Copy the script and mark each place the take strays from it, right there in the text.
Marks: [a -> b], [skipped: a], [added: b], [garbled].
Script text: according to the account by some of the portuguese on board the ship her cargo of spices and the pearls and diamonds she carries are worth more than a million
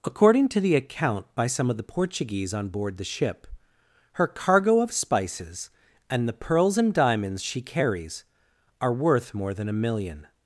according to the account by some of the portuguese on board the ship her cargo of spices and the pearls and diamonds she carries are worth more than a million